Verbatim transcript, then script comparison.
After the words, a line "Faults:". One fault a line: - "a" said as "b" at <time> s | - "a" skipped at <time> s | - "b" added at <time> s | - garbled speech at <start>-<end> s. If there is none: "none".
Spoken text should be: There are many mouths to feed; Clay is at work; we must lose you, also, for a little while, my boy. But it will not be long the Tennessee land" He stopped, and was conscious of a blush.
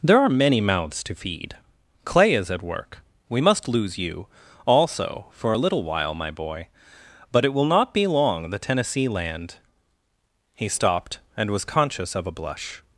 There are many mouths to feed; Clay is at work; we must lose you, also, for a little while, my boy. But it will not be long the Tennessee land" He stopped, and was conscious of a blush.
Faults:
none